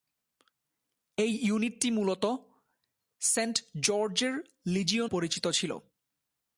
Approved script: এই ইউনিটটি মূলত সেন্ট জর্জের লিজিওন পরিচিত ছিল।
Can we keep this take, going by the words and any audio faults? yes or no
yes